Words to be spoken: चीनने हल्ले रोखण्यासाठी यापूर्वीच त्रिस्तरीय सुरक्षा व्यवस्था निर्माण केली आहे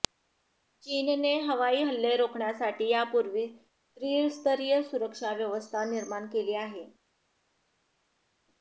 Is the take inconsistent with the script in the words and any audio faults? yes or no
yes